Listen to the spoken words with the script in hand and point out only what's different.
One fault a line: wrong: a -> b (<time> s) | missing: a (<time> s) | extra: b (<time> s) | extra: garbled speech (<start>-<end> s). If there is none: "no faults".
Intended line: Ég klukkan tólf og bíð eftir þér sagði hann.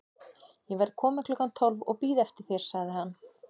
extra: verð kominn (0.8 s)